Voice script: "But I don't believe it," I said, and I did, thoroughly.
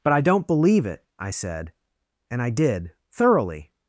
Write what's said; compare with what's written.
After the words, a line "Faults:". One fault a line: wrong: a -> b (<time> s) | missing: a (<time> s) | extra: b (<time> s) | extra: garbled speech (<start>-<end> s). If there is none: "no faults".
"But I don't believe it," I said, and I did, thoroughly.
Faults:
no faults